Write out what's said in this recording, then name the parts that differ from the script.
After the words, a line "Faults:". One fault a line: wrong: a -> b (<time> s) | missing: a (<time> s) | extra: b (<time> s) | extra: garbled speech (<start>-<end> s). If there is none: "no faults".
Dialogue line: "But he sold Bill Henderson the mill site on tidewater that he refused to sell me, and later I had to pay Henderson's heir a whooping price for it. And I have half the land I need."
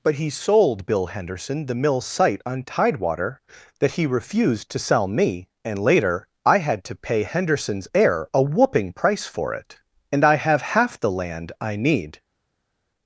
"But he sold Bill Henderson the mill site on tidewater that he refused to sell me, and later I had to pay Henderson's heir a whooping price for it. And I have half the land I need."
Faults:
no faults